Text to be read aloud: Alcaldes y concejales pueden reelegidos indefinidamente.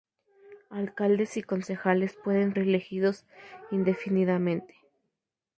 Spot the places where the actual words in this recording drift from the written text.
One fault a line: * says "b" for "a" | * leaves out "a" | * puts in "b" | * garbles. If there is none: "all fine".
all fine